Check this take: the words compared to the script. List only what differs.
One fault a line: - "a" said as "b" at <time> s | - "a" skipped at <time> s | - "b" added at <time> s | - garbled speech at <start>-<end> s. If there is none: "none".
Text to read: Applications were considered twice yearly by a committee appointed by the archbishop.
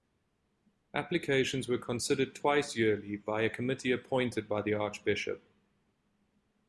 none